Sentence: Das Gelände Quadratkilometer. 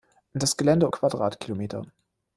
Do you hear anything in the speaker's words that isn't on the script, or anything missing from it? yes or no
no